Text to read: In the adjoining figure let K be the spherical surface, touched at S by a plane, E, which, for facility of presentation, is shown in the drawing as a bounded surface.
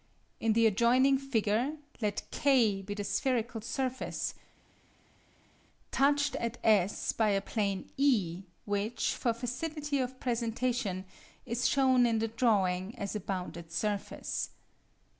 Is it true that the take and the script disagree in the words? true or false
false